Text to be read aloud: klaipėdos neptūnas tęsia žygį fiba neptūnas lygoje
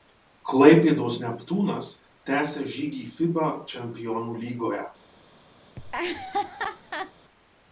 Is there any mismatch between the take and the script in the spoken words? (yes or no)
yes